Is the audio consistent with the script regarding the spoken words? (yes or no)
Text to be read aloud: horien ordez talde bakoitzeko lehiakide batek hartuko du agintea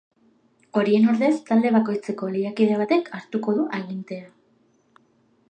yes